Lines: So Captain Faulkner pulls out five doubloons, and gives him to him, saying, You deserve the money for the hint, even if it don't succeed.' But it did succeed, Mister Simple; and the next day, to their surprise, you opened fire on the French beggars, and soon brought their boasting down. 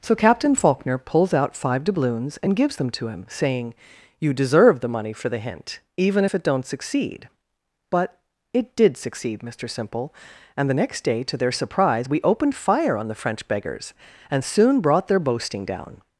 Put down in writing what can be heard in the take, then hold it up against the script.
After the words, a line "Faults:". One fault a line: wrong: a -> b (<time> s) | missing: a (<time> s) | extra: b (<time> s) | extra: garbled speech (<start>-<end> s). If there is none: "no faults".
So Captain Faulkner pulls out five doubloons, and gives them to him, saying, You deserve the money for the hint, even if it don't succeed.' But it did succeed, Mister Simple; and the next day, to their surprise, we opened fire on the French beggars, and soon brought their boasting down.
Faults:
wrong: him -> them (2.8 s)
wrong: you -> we (12.1 s)